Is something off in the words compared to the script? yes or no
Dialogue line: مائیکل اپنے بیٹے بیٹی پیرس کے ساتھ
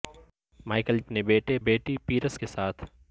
no